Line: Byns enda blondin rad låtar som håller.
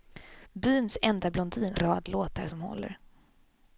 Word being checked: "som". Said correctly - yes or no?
yes